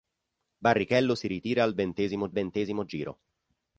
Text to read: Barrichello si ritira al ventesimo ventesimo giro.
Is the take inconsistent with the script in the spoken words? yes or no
no